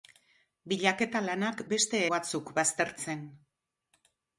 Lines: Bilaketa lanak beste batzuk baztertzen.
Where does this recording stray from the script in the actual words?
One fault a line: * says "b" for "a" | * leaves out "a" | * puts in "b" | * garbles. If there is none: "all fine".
all fine